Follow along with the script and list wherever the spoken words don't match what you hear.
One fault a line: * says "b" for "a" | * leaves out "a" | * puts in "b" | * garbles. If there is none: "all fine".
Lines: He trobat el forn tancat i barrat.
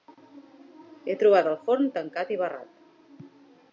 all fine